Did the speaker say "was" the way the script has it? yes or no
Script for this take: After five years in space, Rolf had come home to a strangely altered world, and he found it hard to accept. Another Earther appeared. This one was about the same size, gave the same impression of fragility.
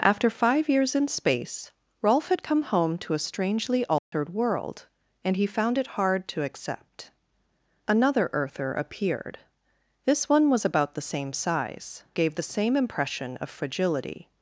yes